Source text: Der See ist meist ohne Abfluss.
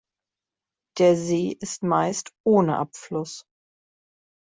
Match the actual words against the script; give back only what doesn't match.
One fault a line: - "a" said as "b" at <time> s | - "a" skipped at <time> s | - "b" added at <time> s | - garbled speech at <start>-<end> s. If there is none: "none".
none